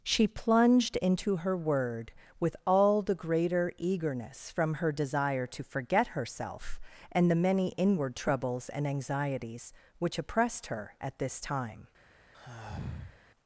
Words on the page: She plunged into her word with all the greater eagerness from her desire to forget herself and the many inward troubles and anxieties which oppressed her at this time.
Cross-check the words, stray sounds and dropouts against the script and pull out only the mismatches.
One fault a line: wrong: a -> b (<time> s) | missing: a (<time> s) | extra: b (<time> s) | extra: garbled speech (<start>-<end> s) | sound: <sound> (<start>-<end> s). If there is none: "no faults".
sound: sigh (12.3-13.2 s)